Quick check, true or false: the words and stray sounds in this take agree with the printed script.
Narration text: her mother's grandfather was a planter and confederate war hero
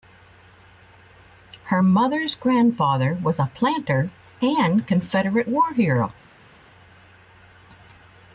true